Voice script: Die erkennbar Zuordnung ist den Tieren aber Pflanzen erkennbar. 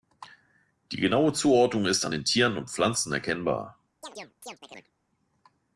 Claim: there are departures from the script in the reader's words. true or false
true